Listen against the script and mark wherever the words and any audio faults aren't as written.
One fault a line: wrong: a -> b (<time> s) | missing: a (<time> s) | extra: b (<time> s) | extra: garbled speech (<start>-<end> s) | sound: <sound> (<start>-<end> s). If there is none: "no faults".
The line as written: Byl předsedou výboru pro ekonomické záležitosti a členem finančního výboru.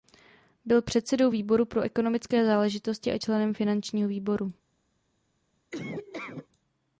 sound: laugh (5.7-6.5 s)